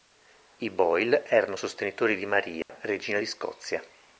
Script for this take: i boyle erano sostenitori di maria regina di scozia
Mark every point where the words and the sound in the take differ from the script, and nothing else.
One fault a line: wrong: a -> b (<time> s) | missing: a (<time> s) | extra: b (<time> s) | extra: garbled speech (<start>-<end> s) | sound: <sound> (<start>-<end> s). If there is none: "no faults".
sound: dropout (2.6-2.7 s)